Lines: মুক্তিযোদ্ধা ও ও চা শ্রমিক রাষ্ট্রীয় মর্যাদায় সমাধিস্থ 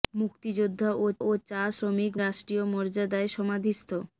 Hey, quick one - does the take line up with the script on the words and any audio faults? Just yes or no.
yes